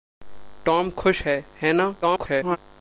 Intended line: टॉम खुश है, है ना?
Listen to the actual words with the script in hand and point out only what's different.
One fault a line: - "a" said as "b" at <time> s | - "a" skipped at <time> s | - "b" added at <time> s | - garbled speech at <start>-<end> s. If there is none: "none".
- garbled speech at 2.0-2.6 s